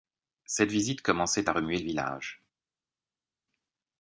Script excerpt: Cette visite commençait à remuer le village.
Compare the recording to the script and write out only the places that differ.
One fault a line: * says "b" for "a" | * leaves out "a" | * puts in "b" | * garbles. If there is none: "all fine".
all fine